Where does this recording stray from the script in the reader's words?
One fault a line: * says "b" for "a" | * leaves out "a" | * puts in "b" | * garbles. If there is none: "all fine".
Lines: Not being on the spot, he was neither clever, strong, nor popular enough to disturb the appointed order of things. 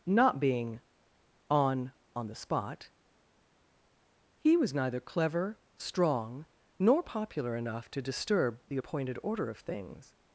* puts in "on"